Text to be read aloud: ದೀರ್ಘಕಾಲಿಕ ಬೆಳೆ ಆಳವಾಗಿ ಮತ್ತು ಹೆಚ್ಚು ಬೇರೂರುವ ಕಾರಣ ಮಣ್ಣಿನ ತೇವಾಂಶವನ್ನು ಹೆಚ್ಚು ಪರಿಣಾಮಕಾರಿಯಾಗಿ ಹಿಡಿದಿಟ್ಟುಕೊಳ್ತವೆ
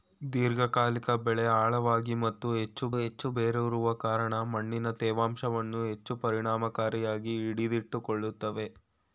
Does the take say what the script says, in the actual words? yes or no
no